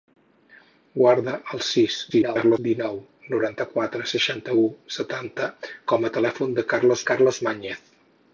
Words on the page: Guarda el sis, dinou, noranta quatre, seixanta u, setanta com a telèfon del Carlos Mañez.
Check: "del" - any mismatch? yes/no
no